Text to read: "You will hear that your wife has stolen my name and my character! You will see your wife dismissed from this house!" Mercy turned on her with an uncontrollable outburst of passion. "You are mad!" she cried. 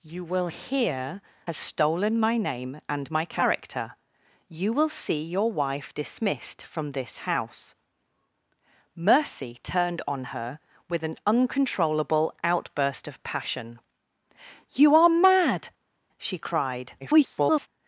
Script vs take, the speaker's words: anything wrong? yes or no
yes